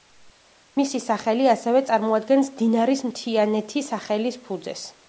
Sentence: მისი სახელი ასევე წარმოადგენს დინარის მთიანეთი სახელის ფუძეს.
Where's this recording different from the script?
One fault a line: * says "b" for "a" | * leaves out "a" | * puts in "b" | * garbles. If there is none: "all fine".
all fine